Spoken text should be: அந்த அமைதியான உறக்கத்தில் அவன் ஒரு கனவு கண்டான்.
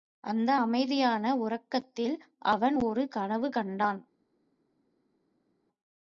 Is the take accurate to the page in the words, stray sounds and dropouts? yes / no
yes